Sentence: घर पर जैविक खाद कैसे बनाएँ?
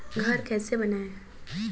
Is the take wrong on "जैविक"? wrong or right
wrong